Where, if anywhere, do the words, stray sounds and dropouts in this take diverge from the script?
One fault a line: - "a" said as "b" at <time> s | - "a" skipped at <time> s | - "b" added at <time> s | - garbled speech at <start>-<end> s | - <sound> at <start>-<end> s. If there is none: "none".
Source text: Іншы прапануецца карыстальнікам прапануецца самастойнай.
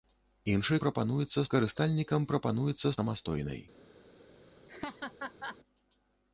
- laugh at 4.7-5.6 s